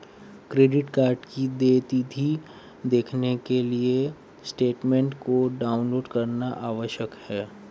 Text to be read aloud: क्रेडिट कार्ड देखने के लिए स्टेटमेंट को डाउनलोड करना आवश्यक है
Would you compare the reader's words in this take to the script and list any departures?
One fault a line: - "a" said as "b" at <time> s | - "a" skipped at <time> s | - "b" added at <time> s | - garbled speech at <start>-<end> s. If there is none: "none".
- "की देय तिथी" added at 1.2 s